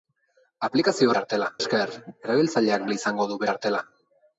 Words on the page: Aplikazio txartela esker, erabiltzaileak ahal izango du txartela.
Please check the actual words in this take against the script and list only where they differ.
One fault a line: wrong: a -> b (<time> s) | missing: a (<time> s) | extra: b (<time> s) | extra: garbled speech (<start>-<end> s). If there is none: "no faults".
no faults